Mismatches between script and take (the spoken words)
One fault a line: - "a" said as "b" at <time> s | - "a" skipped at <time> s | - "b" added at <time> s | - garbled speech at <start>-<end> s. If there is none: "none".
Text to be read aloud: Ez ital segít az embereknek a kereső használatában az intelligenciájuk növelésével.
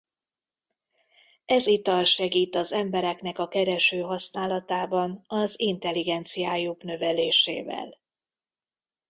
none